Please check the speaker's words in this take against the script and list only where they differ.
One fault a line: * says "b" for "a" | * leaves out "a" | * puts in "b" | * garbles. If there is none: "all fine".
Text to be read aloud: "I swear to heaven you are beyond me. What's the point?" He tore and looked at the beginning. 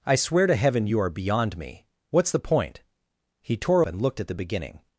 all fine